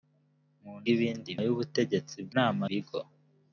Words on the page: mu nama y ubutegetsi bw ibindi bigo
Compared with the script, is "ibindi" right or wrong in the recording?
wrong